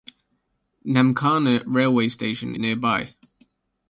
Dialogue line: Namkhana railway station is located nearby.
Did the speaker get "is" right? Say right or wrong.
wrong